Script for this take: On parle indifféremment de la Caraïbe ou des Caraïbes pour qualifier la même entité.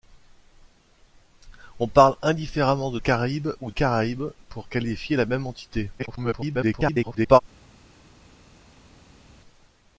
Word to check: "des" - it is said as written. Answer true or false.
false